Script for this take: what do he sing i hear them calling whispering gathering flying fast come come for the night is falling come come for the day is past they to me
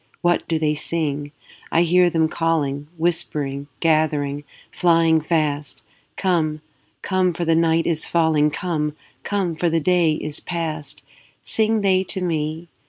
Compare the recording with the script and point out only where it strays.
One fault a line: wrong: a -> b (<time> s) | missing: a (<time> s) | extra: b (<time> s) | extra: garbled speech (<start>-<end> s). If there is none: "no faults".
wrong: he -> they (0.6 s)
extra: sing (11.4 s)